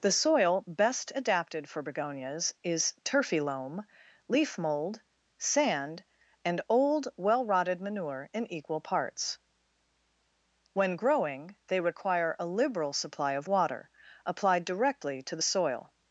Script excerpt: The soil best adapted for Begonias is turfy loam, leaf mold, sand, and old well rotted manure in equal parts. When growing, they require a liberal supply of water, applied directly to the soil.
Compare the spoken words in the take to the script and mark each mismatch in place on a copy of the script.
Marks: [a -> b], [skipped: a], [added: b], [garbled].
The soil best adapted for Begonias is turfy loam, leaf mold, sand, and old well rotted manure in equal parts. When growing, they require a liberal supply of water, applied directly to the soil.